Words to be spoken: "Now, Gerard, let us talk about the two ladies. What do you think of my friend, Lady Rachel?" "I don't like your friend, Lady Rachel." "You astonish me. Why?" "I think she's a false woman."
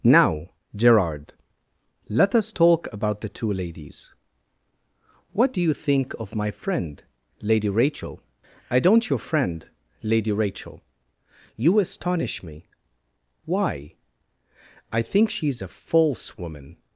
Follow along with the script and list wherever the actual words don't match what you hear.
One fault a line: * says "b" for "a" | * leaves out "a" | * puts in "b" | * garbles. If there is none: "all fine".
* leaves out "like"